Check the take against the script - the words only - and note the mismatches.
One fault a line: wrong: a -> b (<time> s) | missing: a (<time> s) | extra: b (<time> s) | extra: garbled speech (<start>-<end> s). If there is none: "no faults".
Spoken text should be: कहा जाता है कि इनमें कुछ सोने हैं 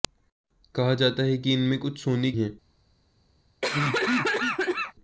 no faults